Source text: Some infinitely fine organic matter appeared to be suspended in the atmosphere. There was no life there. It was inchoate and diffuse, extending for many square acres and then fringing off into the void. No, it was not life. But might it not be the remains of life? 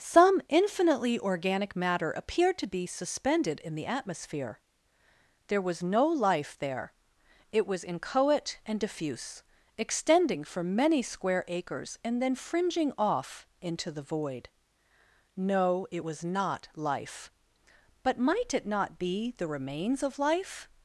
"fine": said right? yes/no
no